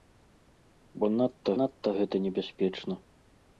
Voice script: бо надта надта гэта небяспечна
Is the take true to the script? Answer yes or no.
yes